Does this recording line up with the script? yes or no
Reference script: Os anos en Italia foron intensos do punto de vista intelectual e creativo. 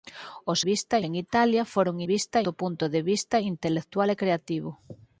no